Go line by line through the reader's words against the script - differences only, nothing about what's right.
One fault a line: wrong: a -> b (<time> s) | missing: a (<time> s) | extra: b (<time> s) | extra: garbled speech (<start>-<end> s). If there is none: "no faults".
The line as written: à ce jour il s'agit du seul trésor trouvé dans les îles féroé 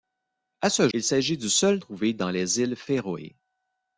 missing: jour (0.9 s)
missing: trésor (1.8 s)